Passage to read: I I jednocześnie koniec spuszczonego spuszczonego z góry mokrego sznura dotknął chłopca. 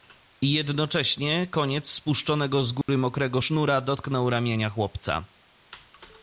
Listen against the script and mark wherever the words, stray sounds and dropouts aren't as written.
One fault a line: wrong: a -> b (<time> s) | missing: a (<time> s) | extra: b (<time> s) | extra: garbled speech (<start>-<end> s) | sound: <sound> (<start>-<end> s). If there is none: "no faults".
missing: I (0.5 s)
missing: spuszczonego (2.6 s)
sound: dropout (2.8-2.9 s)
extra: ramienia (4.3 s)